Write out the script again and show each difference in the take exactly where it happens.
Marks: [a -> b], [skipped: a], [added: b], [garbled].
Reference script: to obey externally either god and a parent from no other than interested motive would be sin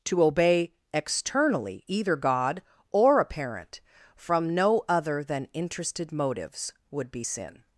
to obey externally either god [and -> or] a parent from no other than interested [motive -> motives] would be sin